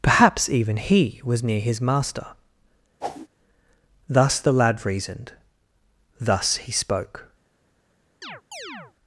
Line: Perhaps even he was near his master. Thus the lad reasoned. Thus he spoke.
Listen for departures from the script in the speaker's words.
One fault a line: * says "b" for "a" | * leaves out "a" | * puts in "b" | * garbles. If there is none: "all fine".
all fine